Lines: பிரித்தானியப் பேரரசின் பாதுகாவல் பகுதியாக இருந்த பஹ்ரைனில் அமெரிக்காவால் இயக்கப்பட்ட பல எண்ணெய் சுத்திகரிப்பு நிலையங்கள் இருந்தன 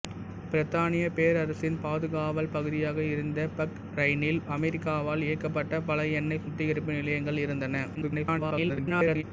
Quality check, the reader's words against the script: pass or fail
fail